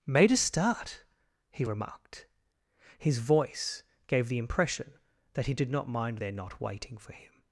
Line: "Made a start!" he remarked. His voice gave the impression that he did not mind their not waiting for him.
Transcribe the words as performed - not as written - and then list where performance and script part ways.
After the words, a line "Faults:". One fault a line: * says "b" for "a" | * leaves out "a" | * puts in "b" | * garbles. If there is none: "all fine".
"Made a start!" he remarked. His voice gave the impression that he did not mind their not waiting for him.
Faults:
all fine